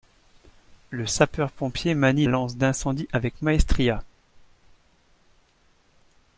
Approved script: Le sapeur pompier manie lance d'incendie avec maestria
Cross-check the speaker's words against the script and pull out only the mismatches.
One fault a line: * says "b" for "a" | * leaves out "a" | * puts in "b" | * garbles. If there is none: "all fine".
all fine